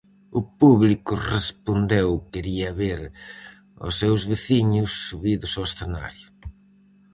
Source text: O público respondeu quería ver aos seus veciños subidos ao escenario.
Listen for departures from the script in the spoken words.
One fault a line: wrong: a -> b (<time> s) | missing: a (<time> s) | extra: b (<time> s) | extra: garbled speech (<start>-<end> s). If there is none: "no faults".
no faults